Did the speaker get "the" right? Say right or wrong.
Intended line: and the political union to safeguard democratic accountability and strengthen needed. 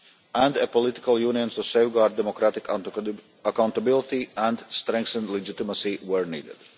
wrong